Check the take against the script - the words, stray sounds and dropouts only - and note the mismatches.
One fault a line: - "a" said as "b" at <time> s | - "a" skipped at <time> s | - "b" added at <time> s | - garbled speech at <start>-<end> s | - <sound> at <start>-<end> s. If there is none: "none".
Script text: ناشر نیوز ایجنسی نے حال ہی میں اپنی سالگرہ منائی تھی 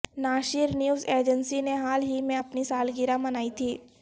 none